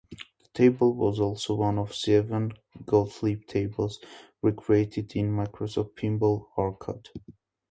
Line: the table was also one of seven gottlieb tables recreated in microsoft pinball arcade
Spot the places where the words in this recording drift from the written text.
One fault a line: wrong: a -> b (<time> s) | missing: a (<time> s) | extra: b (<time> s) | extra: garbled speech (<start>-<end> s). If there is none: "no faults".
no faults